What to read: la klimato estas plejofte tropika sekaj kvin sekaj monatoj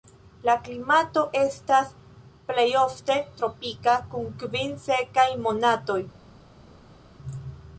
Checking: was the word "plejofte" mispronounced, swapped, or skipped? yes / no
no